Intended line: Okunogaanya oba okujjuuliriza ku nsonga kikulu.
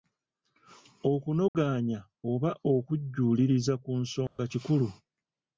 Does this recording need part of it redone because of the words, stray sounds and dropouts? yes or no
yes